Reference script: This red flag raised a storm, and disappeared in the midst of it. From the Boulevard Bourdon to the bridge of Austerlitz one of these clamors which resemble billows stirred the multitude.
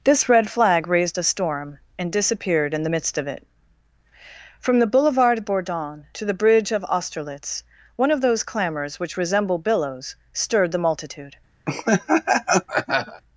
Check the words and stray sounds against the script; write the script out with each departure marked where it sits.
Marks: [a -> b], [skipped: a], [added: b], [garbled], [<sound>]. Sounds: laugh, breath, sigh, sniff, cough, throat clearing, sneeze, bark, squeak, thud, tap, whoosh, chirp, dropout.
This red flag raised a storm, and disappeared in the midst of it. From the Boulevard Bourdon to the bridge of Austerlitz one of [these -> those] clamors which resemble billows stirred the multitude. [laugh]